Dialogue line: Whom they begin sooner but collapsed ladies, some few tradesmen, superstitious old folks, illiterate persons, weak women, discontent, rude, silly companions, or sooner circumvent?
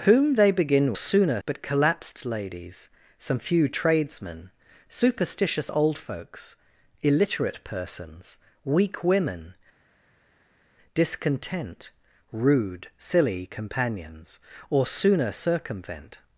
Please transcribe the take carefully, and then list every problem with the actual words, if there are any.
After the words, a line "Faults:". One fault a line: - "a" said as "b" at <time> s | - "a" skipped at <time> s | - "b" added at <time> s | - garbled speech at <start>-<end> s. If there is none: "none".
Whom they begin sooner but collapsed ladies, some few tradesmen, superstitious old folks, illiterate persons, weak women, discontent, rude, silly companions, or sooner circumvent?
Faults:
none